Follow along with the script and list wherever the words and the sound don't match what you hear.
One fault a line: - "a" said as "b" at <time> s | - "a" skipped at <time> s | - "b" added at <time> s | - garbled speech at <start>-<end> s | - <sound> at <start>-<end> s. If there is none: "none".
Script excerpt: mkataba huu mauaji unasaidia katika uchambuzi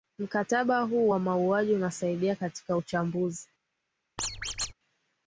- "wa" added at 1.1 s
- squeak at 4.2-4.7 s